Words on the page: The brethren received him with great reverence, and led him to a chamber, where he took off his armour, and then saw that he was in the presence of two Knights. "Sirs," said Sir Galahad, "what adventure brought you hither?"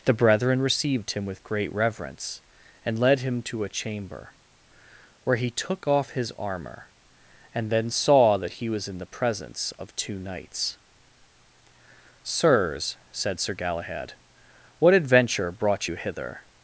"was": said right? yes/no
yes